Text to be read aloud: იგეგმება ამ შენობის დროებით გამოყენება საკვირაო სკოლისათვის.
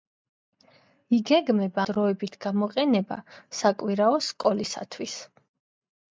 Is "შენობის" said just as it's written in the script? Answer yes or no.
no